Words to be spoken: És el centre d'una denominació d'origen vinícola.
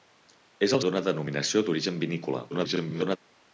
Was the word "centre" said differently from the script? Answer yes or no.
yes